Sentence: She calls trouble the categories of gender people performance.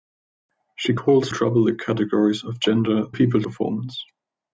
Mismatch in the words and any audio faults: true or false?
false